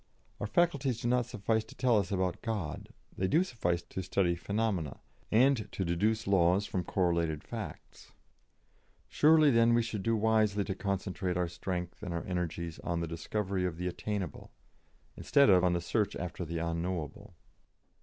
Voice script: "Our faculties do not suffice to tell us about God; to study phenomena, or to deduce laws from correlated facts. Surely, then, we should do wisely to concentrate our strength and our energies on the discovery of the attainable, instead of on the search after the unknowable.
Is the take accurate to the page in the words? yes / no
no